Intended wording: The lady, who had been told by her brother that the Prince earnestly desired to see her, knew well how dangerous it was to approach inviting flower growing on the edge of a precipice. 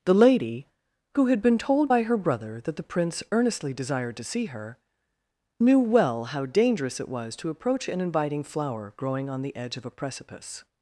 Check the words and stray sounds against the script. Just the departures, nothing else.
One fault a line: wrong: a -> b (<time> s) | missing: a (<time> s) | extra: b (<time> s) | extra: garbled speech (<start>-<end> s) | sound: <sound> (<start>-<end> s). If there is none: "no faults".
extra: an (7.9 s)